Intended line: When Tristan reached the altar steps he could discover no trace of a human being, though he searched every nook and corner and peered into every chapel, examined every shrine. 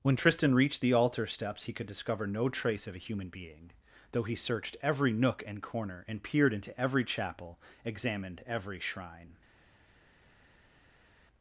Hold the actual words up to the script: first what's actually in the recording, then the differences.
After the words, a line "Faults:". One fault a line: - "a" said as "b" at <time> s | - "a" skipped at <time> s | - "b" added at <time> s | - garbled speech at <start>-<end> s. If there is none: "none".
When Tristan reached the altar steps he could discover no trace of a human being, though he searched every nook and corner and peered into every chapel, examined every shrine.
Faults:
none